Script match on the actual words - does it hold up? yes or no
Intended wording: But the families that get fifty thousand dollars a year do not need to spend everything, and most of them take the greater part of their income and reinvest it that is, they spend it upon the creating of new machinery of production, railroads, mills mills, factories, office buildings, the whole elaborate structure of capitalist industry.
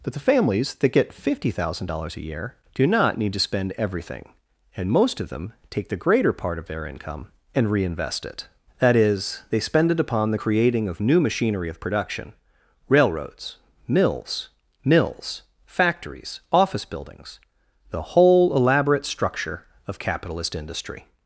yes